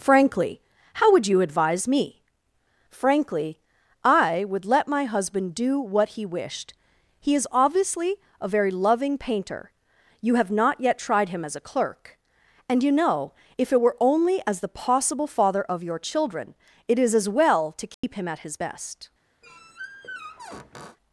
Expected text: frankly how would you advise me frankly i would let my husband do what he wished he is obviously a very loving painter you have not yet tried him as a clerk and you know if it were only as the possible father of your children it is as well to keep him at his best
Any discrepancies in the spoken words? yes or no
no